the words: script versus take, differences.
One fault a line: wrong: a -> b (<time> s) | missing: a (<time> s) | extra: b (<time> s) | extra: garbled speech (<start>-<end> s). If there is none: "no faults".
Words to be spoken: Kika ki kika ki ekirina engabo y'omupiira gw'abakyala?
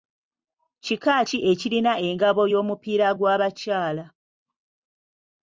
missing: kika ki (1.4 s)